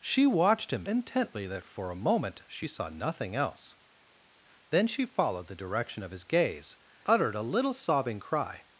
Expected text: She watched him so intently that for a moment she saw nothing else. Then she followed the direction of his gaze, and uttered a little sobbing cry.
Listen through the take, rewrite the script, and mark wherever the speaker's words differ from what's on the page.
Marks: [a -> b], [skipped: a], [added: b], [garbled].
She watched him [skipped: so] intently that for a moment she saw nothing else. Then she followed the direction of his gaze, [skipped: and] uttered a little sobbing cry.